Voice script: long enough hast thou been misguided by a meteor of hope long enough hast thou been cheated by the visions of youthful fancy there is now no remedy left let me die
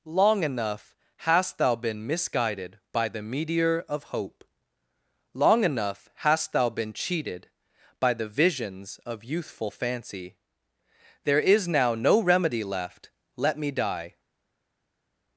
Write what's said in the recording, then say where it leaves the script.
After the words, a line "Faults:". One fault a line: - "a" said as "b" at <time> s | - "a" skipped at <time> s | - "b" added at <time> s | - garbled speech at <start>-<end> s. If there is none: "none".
long enough hast thou been misguided by the meteor of hope long enough hast thou been cheated by the visions of youthful fancy there is now no remedy left let me die
Faults:
- "a" said as "the" at 3.1 s